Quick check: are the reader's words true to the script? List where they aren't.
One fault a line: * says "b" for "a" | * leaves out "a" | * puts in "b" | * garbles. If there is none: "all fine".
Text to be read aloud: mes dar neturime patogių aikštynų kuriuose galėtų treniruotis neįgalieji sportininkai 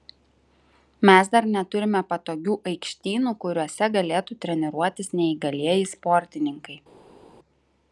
all fine